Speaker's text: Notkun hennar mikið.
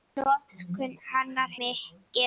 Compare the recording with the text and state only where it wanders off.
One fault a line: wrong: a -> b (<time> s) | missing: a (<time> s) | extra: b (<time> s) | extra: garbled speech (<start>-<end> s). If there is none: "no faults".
no faults